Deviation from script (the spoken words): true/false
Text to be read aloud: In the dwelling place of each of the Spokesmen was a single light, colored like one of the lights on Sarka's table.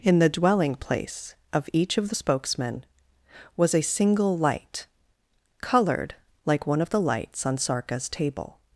false